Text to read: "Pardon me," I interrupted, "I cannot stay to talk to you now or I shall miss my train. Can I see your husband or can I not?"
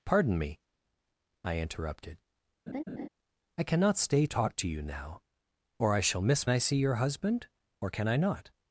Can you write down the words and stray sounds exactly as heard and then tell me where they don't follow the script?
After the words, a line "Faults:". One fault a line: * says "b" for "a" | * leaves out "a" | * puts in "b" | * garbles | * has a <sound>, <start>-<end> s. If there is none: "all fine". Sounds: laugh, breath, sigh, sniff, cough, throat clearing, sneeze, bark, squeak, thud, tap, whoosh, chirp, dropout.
"Pardon me," I interrupted, "I cannot stay talk to you now or I shall miss I see your husband or can I not?"
Faults:
* has a laugh, 2.7-3.1 s
* leaves out "to"
* leaves out "my train Can"